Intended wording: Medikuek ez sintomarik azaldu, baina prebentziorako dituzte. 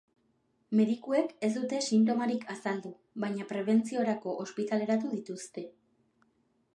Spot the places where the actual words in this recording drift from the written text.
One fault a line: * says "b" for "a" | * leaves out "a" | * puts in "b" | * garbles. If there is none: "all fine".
* puts in "dute"
* puts in "ospitaleratu"